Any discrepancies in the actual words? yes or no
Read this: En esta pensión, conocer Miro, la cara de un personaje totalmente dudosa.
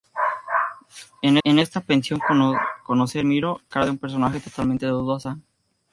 yes